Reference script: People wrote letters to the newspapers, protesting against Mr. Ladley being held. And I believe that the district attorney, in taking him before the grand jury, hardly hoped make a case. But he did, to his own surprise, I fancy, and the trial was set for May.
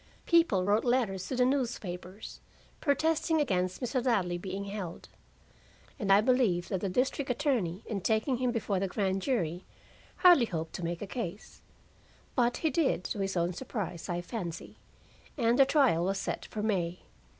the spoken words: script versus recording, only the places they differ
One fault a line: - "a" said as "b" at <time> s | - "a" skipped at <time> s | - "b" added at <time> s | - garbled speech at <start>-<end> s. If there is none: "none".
- "to" added at 10.7 s